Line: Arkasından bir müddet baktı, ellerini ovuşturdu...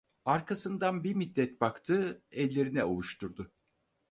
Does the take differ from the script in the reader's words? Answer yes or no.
no